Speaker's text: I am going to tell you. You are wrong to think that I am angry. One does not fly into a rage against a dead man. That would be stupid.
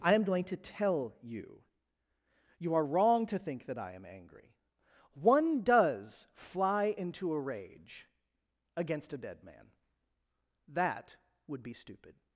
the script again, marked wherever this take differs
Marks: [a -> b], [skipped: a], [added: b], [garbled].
I am going to tell you. You are wrong to think that I am angry. One does [skipped: not] fly into a rage against a dead man. That would be stupid.